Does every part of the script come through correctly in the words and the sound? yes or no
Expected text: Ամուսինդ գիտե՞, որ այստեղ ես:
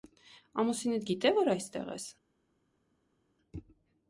yes